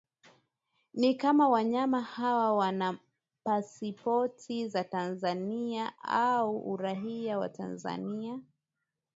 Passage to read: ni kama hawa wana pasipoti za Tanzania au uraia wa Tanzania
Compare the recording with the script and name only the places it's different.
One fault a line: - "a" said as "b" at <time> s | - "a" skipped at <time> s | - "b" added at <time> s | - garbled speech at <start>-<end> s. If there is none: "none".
- "wanyama" added at 1.5 s